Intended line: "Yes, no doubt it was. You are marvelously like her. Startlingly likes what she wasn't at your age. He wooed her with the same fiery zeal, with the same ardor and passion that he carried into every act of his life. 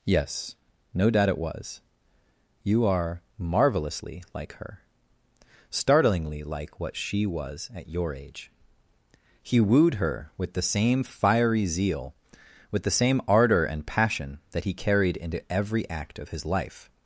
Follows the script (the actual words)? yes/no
no